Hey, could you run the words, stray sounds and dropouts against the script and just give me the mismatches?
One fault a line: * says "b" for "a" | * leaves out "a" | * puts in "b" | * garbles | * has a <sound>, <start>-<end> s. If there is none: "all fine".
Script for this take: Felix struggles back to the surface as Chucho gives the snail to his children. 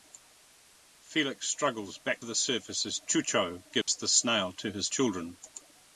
* leaves out "to"
* has a dropout, 3.8-3.9 s